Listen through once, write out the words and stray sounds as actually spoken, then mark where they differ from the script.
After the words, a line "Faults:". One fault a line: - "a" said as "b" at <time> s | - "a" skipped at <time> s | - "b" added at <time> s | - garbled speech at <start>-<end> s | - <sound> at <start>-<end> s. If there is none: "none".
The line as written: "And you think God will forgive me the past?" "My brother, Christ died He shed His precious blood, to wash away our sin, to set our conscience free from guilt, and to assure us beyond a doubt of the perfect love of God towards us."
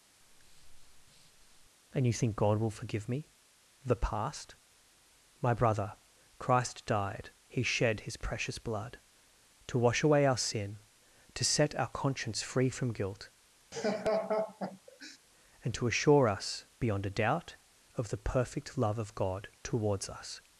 "And you think God will forgive me the past?" "My brother, Christ died He shed His precious blood, to wash away our sin, to set our conscience free from guilt, and to assure us beyond a doubt of the perfect love of God towards us."
Faults:
- breath at 0.2-1.7 s
- laugh at 13.7-15.2 s